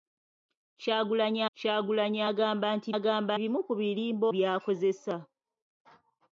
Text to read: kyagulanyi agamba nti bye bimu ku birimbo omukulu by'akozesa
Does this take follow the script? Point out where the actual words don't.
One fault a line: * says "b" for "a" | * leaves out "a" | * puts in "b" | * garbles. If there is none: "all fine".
* puts in "kyagulanyi"
* says "agamba" for "bye"
* leaves out "omukulu"